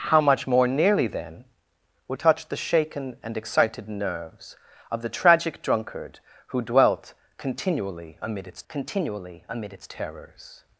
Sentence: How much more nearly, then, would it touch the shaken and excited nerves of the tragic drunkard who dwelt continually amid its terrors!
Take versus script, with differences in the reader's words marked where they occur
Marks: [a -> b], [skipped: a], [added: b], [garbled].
How much more nearly, then, would [skipped: it] touch the shaken and excited nerves of the tragic drunkard who dwelt continually amid its [added: continually amid its] terrors!